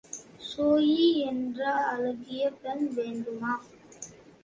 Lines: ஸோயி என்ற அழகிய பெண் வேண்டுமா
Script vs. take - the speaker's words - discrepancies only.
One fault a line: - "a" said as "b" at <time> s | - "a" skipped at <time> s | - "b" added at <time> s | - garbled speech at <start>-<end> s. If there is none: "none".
none